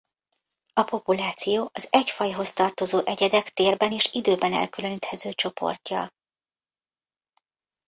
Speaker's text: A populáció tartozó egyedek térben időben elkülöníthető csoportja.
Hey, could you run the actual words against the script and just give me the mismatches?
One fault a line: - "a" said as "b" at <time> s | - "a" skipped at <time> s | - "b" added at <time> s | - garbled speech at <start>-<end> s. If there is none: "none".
- "az egy fajhoz" added at 1.7 s
- "és" added at 3.9 s